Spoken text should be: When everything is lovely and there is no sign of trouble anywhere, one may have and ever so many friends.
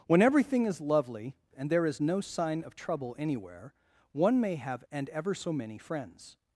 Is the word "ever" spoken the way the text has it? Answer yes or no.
yes